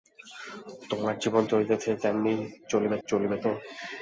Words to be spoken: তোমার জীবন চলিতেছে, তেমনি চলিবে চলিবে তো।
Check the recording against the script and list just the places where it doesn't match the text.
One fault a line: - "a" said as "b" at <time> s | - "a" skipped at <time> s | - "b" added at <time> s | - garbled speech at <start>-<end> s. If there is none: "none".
none